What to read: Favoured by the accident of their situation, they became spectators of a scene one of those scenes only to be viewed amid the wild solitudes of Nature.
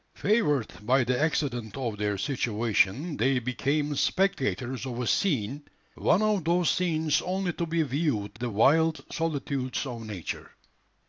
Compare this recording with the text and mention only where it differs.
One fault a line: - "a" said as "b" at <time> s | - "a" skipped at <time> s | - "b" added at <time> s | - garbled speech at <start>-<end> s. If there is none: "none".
- "amid" skipped at 8.4 s